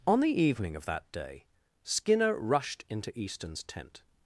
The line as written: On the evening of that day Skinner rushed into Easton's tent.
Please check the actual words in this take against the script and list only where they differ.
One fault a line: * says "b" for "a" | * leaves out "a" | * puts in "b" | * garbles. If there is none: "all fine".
all fine